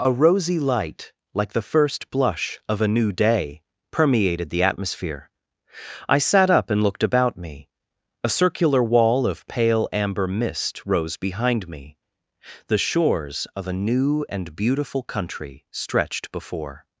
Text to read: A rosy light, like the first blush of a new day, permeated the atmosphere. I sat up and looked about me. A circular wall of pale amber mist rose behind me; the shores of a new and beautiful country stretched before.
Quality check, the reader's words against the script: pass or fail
pass